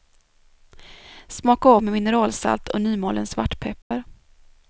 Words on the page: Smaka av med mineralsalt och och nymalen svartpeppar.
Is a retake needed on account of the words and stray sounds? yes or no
yes